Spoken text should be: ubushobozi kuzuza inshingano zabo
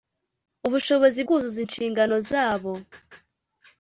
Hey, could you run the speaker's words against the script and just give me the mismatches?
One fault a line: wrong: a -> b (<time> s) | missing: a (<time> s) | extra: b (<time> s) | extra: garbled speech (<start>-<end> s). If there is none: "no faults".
no faults